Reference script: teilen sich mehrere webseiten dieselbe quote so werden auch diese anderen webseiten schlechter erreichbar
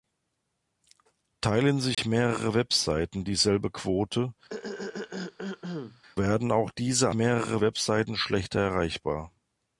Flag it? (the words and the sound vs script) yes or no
yes